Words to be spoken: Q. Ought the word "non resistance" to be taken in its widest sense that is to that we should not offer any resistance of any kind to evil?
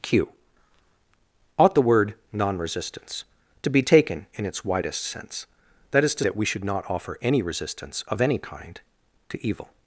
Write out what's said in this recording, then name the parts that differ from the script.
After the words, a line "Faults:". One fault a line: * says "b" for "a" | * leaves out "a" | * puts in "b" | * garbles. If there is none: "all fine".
Q. Ought the word "non resistance" to be taken in its widest sense that is to that we should not offer any resistance of any kind to evil?
Faults:
all fine